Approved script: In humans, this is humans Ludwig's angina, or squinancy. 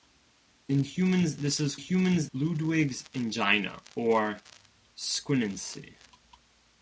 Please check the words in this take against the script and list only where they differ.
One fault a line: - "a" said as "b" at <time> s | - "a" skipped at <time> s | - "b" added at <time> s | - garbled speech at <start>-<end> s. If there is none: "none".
none